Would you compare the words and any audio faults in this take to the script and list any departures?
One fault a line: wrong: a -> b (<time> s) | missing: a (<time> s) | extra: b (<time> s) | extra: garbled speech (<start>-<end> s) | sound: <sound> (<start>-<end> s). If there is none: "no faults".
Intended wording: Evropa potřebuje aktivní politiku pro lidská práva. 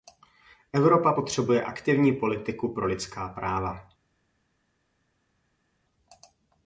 no faults